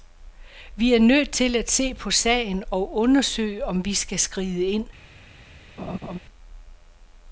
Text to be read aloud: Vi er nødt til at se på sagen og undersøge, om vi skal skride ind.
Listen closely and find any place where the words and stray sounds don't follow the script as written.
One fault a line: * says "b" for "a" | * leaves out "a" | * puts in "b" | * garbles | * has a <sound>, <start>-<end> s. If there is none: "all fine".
* has a laugh, 5.8-6.2 s